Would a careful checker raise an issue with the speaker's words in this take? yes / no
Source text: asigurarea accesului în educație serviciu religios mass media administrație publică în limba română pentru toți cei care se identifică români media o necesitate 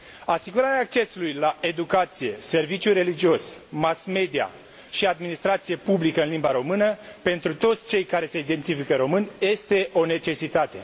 yes